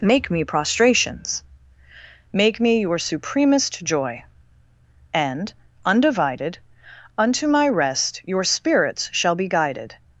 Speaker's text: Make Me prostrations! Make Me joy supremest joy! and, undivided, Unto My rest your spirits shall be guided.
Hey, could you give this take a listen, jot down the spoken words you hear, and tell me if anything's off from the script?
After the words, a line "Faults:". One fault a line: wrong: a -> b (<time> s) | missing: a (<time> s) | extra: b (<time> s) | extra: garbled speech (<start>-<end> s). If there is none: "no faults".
Make Me prostrations! Make Me your supremest joy! and, undivided, Unto My rest your spirits shall be guided.
Faults:
wrong: joy -> your (2.8 s)